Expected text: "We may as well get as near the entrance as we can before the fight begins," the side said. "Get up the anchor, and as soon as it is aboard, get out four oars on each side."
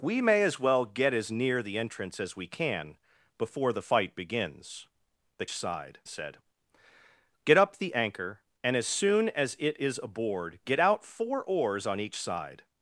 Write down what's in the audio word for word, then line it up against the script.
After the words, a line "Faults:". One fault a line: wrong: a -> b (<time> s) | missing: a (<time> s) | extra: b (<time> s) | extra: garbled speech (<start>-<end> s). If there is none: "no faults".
"We may as well get as near the entrance as we can before the fight begins," the side said. "Get up the anchor, and as soon as it is aboard, get out four oars on each side."
Faults:
no faults